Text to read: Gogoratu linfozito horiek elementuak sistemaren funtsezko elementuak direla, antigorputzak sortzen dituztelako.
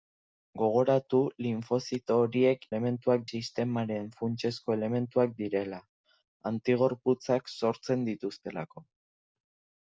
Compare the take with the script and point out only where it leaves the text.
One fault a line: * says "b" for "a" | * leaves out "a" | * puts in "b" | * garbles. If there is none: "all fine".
all fine